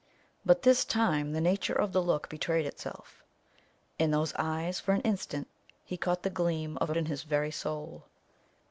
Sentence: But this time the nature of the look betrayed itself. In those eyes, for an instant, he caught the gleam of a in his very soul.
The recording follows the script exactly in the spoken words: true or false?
true